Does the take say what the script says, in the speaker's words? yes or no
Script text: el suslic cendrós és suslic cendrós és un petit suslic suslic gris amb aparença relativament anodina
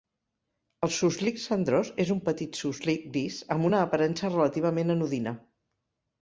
no